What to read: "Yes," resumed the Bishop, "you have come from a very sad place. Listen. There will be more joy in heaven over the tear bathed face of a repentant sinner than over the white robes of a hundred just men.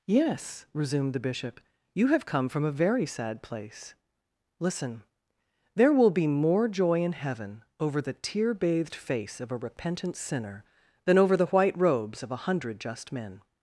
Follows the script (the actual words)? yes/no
yes